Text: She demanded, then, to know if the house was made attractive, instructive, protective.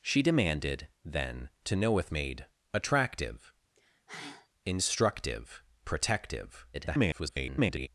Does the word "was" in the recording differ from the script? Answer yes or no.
yes